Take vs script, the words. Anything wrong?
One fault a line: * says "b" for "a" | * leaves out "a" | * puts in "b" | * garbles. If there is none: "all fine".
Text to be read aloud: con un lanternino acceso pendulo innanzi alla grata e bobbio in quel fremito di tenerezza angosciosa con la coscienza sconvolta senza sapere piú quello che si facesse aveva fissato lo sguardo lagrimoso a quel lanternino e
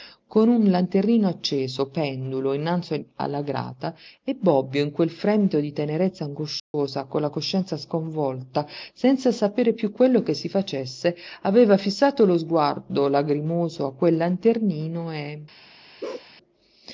all fine